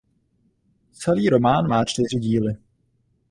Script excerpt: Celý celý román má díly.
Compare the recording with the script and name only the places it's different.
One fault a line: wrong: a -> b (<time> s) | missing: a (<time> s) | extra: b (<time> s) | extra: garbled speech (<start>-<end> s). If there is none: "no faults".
missing: celý (1.3 s)
extra: čtyři (1.8 s)